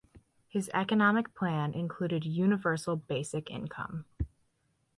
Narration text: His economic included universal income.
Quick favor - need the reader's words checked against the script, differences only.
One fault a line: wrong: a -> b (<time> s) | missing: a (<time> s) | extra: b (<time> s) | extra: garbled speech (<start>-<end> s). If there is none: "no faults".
extra: plan (1.4 s)
extra: basic (3.0 s)